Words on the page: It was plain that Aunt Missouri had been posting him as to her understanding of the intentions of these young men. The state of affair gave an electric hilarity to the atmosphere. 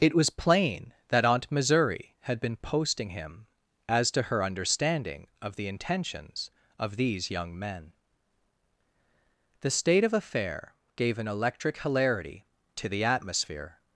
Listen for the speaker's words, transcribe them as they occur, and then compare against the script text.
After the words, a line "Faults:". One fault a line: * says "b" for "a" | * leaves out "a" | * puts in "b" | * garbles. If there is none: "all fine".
It was plain that Aunt Missouri had been posting him as to her understanding of the intentions of these young men. The state of affair gave an electric hilarity to the atmosphere.
Faults:
all fine